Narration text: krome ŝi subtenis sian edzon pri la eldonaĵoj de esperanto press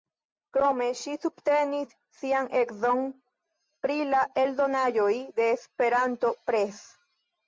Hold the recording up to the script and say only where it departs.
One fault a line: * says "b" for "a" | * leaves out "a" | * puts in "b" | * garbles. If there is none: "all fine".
all fine